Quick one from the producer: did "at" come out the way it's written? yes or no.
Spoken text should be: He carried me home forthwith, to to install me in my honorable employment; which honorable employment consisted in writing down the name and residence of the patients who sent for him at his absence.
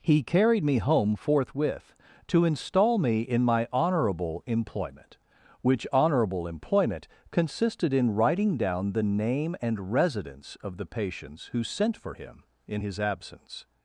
no